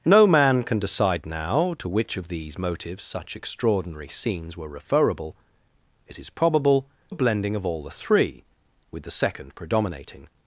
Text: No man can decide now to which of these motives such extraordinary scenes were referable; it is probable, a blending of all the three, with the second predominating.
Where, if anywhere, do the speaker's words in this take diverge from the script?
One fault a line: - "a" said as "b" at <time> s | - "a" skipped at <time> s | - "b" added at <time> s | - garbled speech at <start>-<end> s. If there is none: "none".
none